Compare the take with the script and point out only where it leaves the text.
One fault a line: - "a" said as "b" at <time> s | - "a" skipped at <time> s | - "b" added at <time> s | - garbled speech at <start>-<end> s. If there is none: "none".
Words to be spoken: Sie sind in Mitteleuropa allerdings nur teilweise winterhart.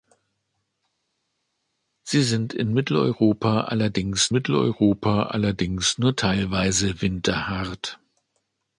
- "Mitteleuropa allerdings" added at 4.3 s